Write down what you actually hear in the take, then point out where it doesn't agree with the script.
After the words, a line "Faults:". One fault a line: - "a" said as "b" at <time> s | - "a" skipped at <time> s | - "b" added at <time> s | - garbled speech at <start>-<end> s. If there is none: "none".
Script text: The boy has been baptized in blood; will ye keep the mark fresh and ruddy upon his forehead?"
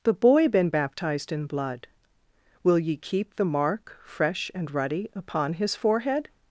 The boy been baptized in blood; will ye keep the mark fresh and ruddy upon his forehead?"
Faults:
- "has" skipped at 0.5 s